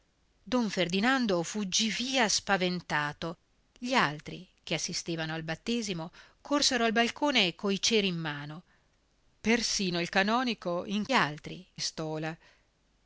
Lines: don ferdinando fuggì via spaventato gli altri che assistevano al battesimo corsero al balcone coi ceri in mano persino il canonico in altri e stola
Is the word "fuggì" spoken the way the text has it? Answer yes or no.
yes